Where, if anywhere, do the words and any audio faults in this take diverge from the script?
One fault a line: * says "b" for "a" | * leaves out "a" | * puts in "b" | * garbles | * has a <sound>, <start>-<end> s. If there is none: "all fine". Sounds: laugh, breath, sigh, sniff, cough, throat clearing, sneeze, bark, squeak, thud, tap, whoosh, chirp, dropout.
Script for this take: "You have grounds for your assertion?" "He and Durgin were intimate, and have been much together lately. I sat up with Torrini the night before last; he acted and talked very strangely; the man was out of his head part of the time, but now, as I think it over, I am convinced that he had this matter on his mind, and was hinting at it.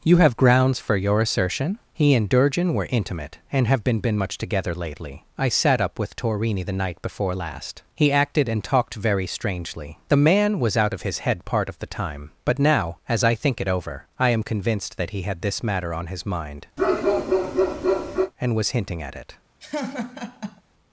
* puts in "been"
* has a bark, 16.8-18.3 s
* has a laugh, 19.6-20.6 s